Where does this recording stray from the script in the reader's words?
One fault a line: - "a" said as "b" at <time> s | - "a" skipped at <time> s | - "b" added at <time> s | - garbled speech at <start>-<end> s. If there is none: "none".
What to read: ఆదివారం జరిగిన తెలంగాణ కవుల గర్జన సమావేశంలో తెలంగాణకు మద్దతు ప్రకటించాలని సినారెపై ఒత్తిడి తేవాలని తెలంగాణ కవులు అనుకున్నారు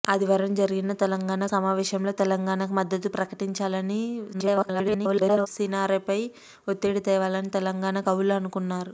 - "కవుల గర్జన" skipped at 1.4 s
- garbled speech at 4.3-5.5 s